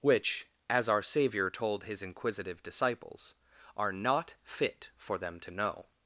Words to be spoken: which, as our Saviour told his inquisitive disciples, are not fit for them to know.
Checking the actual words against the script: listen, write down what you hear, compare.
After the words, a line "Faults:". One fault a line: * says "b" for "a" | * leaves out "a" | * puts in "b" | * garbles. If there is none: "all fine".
which, as our Saviour told his inquisitive disciples, are not fit for them to know.
Faults:
all fine